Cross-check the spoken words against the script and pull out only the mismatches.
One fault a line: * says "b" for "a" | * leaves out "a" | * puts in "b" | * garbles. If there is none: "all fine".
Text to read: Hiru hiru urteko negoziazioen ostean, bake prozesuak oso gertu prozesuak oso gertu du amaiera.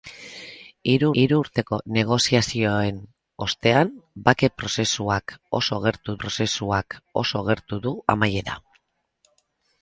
all fine